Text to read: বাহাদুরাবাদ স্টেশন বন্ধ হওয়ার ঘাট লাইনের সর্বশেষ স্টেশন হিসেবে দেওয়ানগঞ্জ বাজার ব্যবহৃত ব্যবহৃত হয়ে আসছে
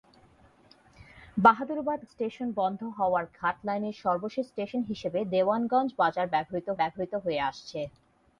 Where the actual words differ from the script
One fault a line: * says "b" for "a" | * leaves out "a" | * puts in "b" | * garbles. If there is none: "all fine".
all fine